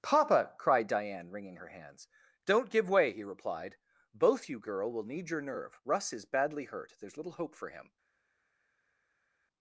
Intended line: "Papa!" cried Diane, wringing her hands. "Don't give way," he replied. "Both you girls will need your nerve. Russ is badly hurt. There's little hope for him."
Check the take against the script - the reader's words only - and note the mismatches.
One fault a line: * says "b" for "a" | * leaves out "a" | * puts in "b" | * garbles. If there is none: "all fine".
* says "girl" for "girls"